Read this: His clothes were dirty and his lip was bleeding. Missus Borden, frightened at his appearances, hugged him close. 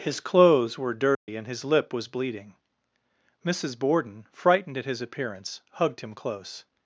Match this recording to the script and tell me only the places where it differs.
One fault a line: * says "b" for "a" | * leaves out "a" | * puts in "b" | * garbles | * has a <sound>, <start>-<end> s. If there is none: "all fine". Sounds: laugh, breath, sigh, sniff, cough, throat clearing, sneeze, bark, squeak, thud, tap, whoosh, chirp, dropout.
* has a dropout, 1.1-1.3 s
* says "appearance" for "appearances"